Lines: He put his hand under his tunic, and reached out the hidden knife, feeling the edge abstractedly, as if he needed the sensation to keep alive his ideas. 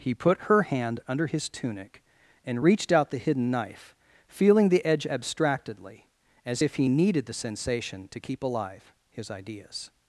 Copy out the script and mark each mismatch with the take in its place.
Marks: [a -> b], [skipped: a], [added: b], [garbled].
He put [his -> her] hand under his tunic, and reached out the hidden knife, feeling the edge abstractedly, as if he needed the sensation to keep alive his ideas.